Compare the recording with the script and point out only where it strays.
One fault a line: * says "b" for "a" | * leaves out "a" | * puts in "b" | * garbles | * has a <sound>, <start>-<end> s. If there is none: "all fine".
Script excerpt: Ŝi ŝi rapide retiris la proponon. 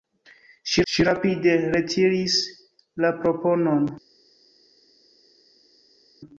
all fine